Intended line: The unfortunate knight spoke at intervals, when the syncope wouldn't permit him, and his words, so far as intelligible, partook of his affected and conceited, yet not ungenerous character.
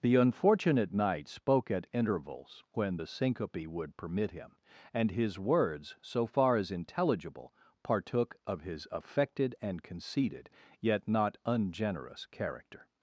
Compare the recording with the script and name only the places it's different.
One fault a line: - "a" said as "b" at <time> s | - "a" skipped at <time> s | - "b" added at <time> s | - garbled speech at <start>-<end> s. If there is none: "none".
- "wouldn't" said as "would" at 3.7 s